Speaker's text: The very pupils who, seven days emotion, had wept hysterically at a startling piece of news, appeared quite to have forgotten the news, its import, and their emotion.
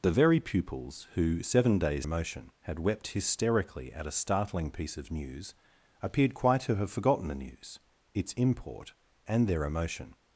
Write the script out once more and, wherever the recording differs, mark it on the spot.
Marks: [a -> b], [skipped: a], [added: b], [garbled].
The very pupils who, seven days emotion, had wept hysterically at a startling piece of news, appeared quite to have forgotten the news, its import, and their emotion.